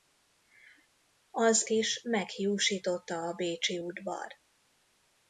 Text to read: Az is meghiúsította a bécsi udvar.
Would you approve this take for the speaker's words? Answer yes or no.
yes